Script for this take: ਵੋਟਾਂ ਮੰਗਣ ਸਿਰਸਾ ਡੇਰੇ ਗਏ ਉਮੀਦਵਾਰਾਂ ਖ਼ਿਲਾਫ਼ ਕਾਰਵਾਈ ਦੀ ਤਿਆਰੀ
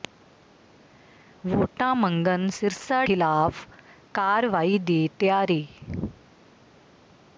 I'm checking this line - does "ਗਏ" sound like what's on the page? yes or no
no